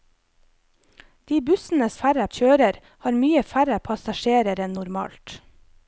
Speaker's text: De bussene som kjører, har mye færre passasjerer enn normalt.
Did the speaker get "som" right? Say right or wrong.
wrong